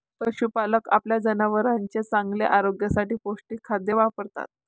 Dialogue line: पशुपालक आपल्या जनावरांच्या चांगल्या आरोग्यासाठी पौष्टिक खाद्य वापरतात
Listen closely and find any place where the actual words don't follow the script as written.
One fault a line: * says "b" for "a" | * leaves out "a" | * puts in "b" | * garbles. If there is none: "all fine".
all fine